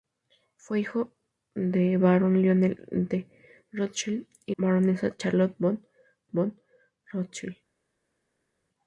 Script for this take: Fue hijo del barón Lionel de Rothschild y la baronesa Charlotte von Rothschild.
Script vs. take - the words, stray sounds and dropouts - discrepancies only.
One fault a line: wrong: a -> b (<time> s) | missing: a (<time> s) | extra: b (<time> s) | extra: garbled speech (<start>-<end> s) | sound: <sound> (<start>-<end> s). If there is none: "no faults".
missing: la (4.6 s)
extra: von (6.3 s)